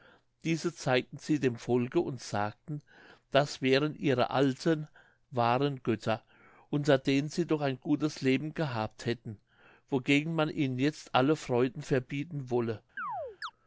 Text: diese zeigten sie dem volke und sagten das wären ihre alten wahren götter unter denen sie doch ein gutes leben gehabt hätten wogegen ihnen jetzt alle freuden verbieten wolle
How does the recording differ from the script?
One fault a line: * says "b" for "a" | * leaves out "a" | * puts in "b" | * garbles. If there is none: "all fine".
* puts in "man"